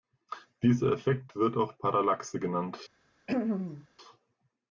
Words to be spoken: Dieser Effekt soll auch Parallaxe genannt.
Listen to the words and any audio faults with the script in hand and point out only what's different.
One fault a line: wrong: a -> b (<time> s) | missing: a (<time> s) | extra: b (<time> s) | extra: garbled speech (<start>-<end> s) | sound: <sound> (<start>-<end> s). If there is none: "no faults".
wrong: soll -> wird (1.4 s)
sound: throat clearing (3.3-3.9 s)